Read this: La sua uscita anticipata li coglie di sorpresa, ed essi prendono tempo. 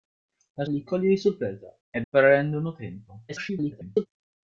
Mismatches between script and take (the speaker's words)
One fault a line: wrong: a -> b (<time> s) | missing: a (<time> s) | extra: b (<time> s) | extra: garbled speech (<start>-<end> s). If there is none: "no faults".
missing: sua uscita anticipata (0.7 s)
missing: essi (2.0 s)
extra: garbled speech (3.3-4.1 s)